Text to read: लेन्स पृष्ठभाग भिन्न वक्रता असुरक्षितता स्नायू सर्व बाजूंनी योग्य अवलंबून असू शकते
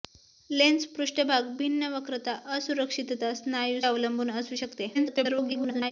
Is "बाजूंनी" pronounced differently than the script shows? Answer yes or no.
yes